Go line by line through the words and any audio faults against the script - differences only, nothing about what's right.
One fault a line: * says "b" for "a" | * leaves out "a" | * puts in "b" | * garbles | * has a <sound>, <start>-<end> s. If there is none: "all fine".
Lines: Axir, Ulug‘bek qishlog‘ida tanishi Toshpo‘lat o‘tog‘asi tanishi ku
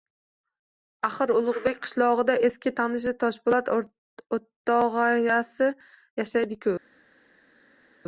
* puts in "eski"
* says "yashaydi" for "tanishi"